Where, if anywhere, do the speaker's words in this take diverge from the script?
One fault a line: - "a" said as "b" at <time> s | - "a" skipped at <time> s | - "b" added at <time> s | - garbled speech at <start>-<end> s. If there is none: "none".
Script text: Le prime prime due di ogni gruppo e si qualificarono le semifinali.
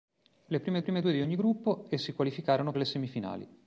none